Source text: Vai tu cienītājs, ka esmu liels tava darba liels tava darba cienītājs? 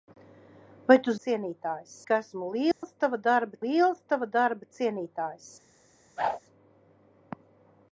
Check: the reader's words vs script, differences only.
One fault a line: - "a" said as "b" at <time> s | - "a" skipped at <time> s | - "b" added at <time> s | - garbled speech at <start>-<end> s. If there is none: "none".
none